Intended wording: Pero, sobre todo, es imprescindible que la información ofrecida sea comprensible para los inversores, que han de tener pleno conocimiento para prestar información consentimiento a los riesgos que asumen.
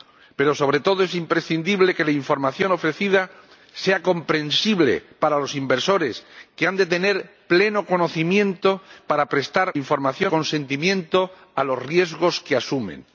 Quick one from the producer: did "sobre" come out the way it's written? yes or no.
yes